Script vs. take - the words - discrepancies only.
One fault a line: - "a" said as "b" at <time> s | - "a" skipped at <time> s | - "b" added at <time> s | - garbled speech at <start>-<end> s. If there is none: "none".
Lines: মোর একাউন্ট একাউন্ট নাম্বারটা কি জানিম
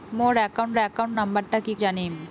none